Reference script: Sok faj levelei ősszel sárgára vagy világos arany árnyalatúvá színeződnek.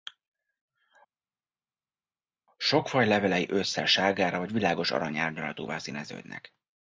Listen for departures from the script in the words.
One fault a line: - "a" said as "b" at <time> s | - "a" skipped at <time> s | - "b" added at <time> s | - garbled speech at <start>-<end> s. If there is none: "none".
none